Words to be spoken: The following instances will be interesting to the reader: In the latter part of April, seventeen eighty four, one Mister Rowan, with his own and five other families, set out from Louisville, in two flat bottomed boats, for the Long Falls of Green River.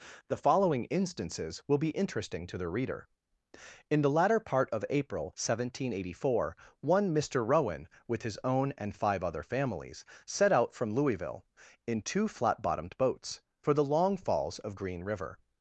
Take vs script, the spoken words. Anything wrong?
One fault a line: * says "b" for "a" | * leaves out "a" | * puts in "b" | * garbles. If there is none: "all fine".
all fine